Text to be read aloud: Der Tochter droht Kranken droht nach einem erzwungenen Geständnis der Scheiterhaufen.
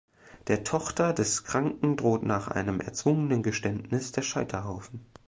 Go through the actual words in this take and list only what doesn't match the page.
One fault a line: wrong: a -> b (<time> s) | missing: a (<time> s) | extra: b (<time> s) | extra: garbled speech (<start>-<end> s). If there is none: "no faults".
wrong: droht -> des (1.1 s)